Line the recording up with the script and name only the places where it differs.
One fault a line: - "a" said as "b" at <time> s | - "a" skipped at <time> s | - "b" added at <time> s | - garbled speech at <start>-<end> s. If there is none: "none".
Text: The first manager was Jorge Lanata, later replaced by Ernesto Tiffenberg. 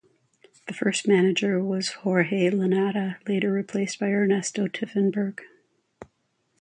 none